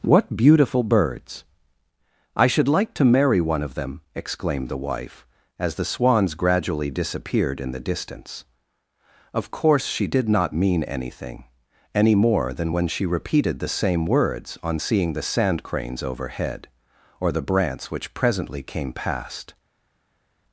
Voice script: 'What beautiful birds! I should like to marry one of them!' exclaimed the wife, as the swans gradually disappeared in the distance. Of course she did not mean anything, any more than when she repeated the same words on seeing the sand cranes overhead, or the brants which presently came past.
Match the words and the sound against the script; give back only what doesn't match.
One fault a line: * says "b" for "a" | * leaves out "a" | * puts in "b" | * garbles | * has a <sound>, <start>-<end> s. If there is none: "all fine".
all fine